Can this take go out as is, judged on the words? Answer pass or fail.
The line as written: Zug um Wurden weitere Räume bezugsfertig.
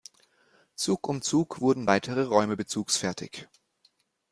fail